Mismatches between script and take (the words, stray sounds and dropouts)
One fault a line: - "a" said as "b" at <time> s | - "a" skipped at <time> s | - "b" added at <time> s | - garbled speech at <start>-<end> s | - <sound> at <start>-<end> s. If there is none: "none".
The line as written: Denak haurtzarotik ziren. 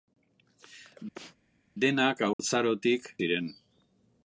- sneeze at 1.1-1.4 s
- dropout at 2.3-2.4 s